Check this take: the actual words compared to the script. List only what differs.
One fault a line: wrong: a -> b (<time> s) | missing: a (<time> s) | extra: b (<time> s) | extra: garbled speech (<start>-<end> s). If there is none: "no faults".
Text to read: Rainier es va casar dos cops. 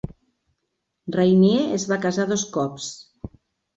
no faults